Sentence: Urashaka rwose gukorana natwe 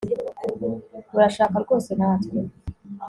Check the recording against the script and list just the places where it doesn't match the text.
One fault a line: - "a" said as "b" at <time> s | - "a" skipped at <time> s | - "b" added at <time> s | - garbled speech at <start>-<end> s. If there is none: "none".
- "gukorana" skipped at 1.9 s